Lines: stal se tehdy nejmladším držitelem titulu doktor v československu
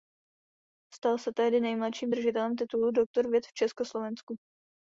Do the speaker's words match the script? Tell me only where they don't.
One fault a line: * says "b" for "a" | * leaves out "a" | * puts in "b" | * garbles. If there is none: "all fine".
* puts in "věd"